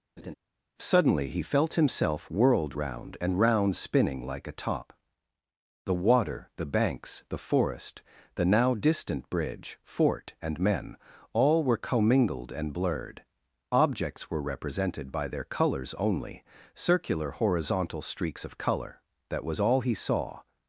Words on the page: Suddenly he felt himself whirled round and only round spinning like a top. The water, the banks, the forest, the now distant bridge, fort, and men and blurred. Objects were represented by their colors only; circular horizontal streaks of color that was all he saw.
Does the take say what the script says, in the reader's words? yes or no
no